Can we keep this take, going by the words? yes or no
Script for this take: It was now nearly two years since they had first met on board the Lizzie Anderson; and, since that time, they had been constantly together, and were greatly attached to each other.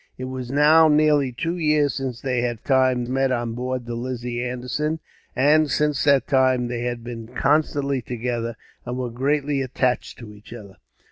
no